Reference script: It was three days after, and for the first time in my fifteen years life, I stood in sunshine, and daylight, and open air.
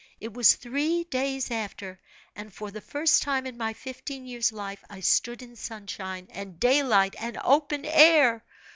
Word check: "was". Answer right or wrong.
right